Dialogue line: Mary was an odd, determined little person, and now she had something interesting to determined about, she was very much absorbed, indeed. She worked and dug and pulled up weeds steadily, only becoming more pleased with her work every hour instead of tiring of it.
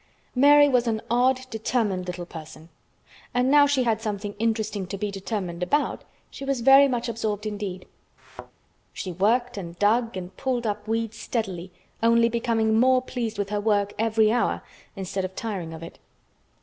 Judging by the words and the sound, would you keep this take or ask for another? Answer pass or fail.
fail